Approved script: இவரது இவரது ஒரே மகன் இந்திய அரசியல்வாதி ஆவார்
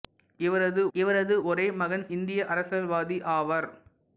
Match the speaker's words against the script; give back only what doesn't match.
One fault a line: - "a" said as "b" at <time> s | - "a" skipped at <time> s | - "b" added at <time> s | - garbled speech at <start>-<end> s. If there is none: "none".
none